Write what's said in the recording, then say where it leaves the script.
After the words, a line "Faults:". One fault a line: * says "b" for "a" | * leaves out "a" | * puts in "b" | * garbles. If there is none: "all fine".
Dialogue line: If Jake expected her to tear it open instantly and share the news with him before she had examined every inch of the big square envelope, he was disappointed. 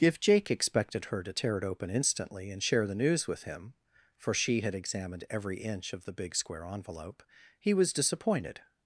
If Jake expected her to tear it open instantly and share the news with him for she had examined every inch of the big square envelope, he was disappointed.
Faults:
* says "for" for "before"